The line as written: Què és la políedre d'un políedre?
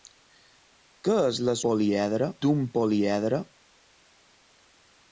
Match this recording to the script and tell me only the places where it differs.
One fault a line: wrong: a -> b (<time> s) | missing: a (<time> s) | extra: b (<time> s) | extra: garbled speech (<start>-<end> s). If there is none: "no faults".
no faults